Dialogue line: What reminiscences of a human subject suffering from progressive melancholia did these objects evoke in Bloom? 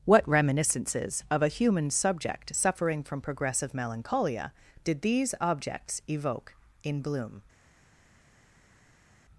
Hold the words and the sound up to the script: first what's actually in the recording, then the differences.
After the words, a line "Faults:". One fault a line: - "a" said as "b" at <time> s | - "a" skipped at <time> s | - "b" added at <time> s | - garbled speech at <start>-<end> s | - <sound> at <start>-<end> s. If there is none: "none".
What reminiscences of a human subject suffering from progressive melancholia did these objects evoke in Bloom?
Faults:
none